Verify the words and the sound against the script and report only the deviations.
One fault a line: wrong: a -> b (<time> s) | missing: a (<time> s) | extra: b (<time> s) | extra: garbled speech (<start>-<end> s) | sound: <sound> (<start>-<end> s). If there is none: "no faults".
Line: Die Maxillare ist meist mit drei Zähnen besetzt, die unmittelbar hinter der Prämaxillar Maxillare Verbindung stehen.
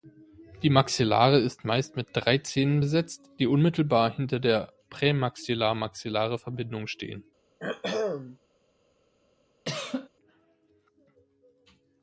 sound: throat clearing (7.6-8.4 s)
sound: cough (9.7-10.1 s)